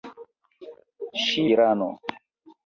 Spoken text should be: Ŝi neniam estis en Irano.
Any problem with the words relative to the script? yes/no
yes